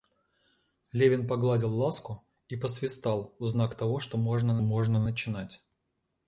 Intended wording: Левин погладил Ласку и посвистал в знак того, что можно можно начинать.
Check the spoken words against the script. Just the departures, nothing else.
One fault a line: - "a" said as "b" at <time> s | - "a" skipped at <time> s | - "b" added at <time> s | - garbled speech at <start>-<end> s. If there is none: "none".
none